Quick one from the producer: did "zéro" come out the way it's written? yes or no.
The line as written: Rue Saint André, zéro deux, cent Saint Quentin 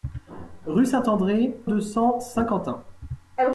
no